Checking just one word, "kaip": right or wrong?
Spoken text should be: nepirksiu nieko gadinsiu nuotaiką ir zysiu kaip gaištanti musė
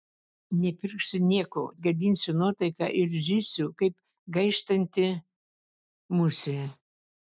right